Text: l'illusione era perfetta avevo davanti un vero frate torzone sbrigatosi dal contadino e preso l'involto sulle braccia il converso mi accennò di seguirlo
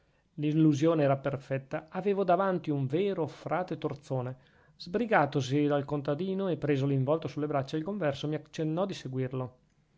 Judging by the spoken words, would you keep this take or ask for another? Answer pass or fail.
pass